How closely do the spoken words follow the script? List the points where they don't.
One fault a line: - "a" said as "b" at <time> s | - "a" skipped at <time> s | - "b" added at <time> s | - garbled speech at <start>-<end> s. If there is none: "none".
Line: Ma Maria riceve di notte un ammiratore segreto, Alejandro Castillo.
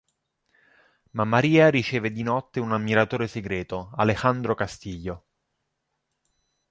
none